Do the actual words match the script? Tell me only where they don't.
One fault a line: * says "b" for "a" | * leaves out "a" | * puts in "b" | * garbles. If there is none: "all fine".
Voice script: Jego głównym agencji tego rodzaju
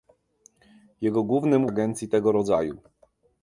all fine